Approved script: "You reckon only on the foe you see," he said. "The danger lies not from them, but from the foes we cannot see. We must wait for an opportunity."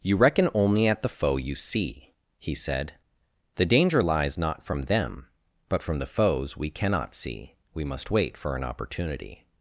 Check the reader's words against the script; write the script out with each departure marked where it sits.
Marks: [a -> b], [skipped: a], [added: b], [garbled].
"You reckon only [on -> at] the foe you see," he said. "The danger lies not from them, but from the foes we cannot see. We must wait for an opportunity."